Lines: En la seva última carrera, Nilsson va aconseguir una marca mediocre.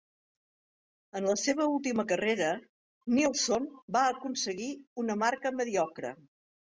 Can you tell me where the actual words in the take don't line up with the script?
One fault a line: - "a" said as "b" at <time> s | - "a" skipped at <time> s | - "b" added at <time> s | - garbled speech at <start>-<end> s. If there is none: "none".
none